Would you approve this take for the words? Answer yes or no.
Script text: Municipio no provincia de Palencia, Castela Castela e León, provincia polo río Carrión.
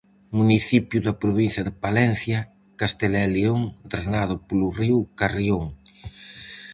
no